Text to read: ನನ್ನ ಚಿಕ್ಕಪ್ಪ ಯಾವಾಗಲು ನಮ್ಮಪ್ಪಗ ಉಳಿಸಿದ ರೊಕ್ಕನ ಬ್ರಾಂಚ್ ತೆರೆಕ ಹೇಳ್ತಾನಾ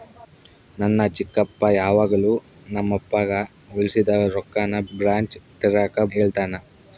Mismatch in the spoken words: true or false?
false